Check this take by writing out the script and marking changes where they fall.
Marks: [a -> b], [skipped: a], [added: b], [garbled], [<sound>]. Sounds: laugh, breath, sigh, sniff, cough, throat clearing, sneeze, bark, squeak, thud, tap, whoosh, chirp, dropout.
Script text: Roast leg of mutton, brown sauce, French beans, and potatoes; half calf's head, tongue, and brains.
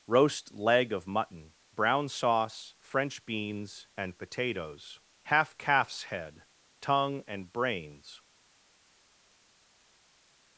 Roast leg of mutton, brown sauce, French beans, and potatoes; half calf's head, tongue, and brains.